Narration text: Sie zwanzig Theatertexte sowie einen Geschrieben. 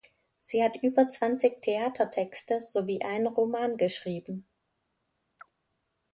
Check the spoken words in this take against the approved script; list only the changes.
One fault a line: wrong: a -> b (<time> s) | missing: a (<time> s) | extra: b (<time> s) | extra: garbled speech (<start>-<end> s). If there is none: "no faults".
extra: hat über (0.6 s)
extra: Roman (3.3 s)